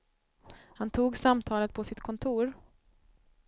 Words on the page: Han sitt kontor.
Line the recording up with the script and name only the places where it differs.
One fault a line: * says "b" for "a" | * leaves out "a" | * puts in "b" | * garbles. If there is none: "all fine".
* puts in "tog samtalet på"